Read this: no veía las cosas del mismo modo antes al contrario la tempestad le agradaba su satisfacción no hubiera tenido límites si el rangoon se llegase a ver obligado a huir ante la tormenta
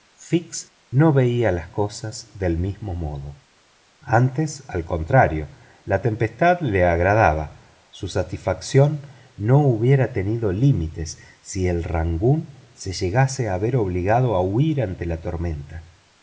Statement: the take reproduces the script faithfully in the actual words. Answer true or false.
true